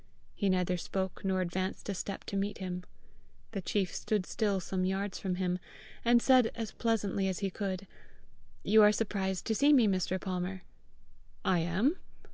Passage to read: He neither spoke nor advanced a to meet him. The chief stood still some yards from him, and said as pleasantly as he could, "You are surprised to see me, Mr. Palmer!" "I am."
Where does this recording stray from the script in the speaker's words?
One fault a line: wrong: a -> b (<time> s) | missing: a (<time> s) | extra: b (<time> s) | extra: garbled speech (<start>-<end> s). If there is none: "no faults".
extra: step (1.9 s)